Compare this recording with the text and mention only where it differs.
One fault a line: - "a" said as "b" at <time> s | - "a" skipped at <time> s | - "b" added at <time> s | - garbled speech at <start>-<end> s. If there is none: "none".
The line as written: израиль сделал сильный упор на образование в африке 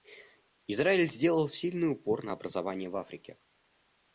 none